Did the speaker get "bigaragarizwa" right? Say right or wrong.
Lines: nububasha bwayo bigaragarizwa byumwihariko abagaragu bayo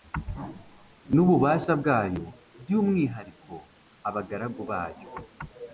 wrong